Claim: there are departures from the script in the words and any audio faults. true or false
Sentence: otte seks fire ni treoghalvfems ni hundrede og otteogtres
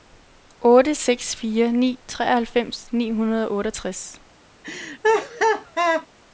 true